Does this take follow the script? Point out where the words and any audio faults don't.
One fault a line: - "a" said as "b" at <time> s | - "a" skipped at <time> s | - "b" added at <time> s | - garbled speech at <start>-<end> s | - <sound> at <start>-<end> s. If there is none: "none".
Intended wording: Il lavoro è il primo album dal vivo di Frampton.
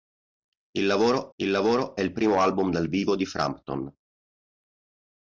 - "il lavoro" added at 1.4 s